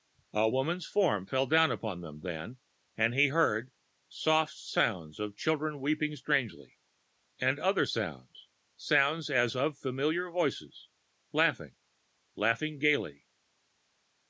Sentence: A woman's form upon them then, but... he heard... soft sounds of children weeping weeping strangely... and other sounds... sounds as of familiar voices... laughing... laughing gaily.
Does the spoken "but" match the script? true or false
false